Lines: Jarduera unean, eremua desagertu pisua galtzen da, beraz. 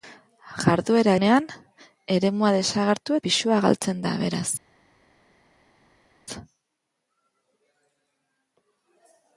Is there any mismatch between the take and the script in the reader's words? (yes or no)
no